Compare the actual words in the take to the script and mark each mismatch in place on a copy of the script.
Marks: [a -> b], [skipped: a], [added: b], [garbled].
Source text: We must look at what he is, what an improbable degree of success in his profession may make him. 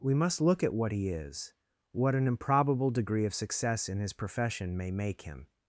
We must look at what he is, what an improbable degree of success in his profession may make him.